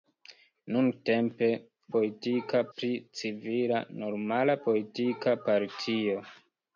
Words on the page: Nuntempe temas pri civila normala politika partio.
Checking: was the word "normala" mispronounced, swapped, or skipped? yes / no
no